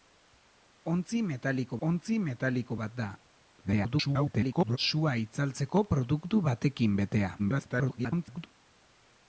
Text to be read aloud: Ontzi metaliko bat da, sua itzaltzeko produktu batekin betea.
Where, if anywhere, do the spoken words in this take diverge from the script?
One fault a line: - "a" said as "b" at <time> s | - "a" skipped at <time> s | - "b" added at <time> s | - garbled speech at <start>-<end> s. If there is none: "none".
- "ontzi metaliko" added at 1.9 s
- garbled speech at 3.6-4.8 s
- garbled speech at 7.4-8.5 s